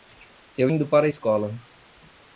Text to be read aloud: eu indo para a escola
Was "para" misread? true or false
false